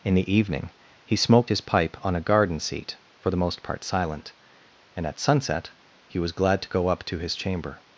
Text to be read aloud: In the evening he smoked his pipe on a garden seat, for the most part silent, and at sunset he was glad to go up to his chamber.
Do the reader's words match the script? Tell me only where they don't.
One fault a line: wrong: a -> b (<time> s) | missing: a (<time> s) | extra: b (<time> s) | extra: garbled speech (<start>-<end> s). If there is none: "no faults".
no faults